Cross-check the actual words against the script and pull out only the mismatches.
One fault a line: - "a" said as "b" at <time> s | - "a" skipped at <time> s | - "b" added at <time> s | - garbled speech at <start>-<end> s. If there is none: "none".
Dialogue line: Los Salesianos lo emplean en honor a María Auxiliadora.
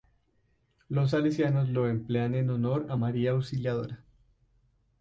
none